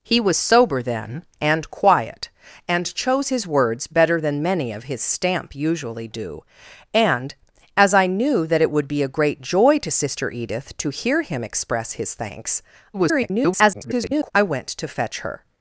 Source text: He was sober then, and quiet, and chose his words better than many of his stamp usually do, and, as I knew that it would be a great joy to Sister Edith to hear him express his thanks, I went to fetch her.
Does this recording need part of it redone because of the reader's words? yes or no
yes